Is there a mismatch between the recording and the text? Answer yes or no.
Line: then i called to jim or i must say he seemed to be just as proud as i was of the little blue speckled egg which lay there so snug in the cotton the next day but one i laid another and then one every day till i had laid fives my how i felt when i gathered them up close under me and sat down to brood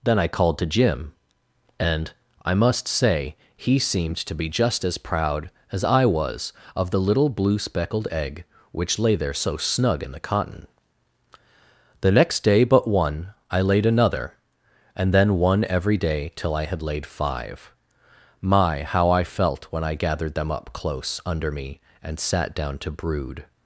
yes